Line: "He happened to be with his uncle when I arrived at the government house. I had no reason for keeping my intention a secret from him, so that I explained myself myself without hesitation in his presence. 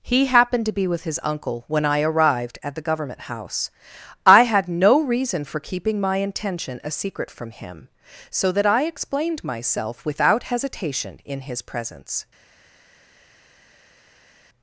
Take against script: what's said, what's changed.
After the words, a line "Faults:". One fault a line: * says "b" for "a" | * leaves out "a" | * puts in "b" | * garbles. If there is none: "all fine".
"He happened to be with his uncle when I arrived at the government house. I had no reason for keeping my intention a secret from him, so that I explained myself without hesitation in his presence.
Faults:
* leaves out "myself"